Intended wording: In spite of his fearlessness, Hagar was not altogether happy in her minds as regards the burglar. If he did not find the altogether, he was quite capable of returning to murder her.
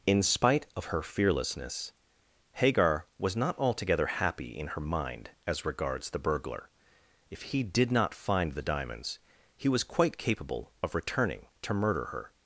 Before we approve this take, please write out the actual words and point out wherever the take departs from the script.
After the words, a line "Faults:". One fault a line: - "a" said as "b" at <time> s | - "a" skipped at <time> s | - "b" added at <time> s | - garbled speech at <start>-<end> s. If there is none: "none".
In spite of her fearlessness, Hagar was not altogether happy in her mind as regards the burglar. If he did not find the diamonds, he was quite capable of returning to murder her.
Faults:
- "his" said as "her" at 0.8 s
- "minds" said as "mind" at 4.8 s
- "altogether" said as "diamonds" at 8.6 s